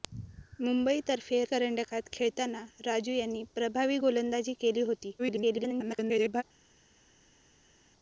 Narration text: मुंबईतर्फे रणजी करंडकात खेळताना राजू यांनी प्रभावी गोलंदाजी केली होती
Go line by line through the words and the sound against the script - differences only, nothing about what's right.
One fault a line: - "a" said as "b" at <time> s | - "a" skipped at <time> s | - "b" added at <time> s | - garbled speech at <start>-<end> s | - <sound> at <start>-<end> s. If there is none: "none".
- "रणजी" skipped at 1.4 s
- garbled speech at 5.2-6.4 s